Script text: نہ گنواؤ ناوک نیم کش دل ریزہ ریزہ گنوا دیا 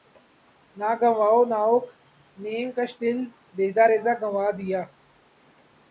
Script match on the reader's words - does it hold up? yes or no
yes